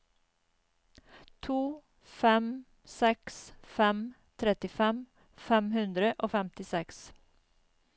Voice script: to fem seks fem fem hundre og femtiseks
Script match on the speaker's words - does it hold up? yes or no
no